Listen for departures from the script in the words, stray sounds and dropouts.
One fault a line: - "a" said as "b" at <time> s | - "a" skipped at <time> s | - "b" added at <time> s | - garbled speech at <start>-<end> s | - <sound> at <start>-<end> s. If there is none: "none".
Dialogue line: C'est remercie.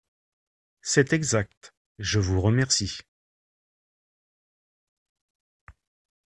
- "exact je vous" added at 1.1 s